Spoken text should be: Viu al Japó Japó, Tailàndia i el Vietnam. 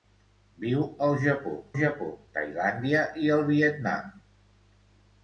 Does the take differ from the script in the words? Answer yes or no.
no